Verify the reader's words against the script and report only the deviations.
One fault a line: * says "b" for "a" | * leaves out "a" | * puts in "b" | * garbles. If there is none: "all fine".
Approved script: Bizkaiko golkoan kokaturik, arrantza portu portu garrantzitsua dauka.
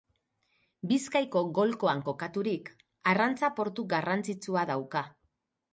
* leaves out "portu"